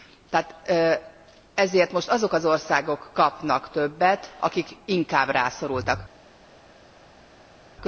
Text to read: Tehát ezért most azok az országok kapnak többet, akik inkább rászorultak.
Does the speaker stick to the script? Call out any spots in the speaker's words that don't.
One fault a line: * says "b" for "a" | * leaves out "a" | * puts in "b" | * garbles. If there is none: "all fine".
all fine